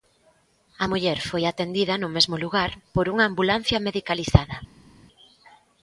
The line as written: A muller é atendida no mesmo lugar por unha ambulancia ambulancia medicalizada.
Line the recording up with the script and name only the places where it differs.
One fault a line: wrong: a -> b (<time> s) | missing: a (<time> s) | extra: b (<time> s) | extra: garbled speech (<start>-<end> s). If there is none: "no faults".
wrong: é -> foi (1.3 s)
missing: ambulancia (3.8 s)